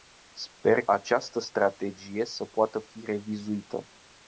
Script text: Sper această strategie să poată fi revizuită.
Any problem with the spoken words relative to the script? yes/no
no